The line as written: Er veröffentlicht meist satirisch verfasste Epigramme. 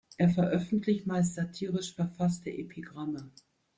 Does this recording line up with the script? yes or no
yes